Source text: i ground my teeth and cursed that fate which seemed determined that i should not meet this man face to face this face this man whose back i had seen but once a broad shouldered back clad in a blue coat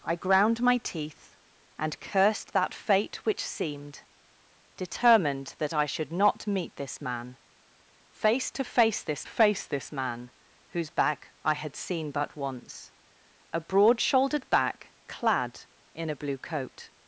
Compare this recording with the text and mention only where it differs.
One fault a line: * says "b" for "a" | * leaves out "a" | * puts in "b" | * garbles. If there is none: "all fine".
all fine